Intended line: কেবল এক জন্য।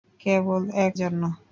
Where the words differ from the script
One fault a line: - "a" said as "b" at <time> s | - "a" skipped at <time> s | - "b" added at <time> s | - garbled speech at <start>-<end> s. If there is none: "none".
none